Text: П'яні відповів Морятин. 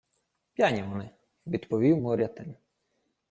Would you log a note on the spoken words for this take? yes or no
yes